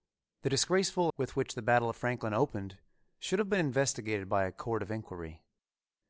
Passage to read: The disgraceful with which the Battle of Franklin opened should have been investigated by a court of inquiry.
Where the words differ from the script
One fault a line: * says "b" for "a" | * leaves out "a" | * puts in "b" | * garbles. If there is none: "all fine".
all fine